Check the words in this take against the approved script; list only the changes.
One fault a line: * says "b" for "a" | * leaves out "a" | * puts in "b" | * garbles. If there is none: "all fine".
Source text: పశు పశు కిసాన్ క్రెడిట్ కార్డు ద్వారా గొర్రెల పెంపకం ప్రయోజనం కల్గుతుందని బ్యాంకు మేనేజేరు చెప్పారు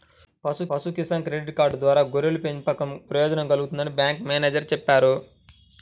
all fine